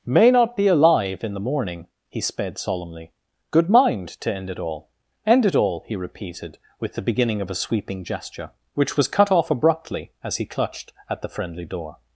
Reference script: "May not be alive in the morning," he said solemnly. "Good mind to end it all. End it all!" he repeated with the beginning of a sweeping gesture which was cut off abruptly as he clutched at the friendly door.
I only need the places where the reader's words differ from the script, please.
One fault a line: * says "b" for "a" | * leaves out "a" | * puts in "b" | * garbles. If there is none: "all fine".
* says "sped" for "said"